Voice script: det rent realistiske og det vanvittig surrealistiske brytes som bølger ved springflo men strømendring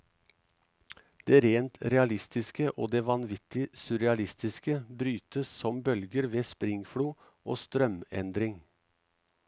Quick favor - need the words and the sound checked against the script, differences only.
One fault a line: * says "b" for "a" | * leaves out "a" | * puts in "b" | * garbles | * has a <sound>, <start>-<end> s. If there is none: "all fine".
* says "og" for "men"